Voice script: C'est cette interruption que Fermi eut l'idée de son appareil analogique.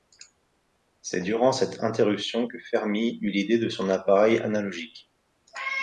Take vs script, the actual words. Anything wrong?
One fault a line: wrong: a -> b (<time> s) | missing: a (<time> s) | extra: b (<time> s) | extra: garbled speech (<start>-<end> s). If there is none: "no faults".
extra: durant (1.2 s)